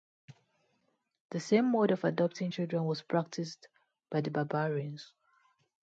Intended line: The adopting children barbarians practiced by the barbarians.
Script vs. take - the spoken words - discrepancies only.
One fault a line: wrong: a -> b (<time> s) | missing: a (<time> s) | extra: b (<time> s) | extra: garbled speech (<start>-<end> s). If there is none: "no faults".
extra: same mode of (1.4 s)
wrong: barbarians -> was (2.9 s)